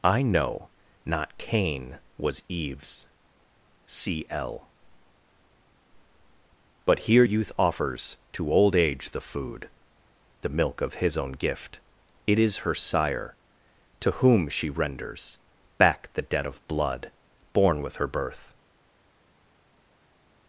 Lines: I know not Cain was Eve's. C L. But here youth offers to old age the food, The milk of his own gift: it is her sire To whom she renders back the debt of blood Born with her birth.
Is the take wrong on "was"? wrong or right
right